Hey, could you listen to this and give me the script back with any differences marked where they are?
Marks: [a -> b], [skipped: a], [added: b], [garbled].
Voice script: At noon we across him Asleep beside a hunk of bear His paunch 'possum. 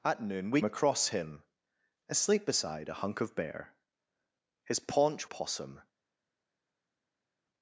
At noon we across him Asleep beside a hunk of bear His paunch 'possum.